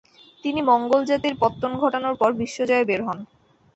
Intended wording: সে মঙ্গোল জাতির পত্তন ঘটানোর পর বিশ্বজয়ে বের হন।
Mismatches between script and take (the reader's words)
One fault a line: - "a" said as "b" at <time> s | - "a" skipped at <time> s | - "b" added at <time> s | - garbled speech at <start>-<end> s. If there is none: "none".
- "সে" said as "তিনি" at 0.4 s